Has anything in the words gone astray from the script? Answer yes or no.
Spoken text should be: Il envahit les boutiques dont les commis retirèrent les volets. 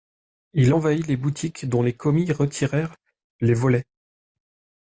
no